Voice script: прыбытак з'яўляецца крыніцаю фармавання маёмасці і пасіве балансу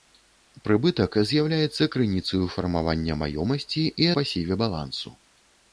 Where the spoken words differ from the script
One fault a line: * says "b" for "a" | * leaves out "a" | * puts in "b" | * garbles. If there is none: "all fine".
all fine